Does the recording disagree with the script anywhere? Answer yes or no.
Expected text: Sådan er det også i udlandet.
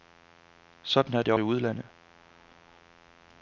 yes